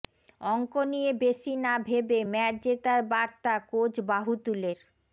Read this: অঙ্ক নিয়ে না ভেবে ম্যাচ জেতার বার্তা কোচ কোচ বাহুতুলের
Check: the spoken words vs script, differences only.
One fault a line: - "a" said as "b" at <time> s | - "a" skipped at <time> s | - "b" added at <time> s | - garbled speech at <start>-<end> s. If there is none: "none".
- "বেশি" added at 1.2 s
- "কোচ" skipped at 3.9 s